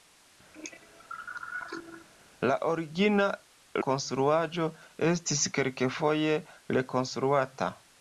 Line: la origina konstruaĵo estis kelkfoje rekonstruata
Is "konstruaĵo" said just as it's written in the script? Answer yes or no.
yes